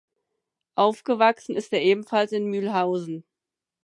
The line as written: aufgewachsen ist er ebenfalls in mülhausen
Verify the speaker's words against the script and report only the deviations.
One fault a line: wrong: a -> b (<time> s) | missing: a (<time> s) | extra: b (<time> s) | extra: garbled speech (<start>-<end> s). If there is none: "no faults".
no faults